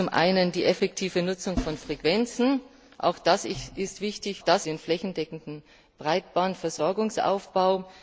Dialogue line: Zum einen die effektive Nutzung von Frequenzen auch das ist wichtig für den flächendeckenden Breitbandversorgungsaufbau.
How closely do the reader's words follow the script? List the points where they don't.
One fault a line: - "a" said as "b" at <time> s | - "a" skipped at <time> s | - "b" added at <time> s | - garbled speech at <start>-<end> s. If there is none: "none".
- "für" said as "das" at 4.4 s